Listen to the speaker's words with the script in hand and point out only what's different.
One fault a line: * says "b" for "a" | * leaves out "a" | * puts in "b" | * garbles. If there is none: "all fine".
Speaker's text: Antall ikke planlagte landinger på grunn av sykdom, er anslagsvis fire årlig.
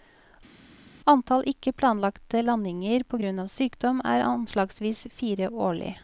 all fine